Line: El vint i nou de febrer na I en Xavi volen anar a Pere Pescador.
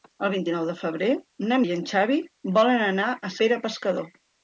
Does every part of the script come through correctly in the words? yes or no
yes